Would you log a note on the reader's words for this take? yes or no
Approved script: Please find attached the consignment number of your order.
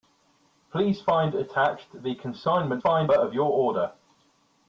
yes